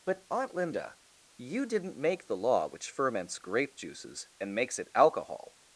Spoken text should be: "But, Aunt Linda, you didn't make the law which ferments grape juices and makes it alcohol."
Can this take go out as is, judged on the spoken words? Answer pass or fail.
pass